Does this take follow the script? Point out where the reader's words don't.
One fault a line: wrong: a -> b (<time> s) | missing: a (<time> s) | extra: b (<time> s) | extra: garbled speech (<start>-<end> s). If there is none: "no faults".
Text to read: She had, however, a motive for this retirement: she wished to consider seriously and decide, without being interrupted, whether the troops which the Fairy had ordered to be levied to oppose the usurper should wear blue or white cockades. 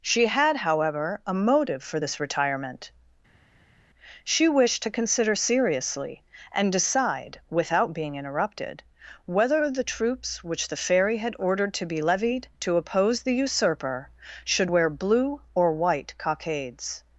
no faults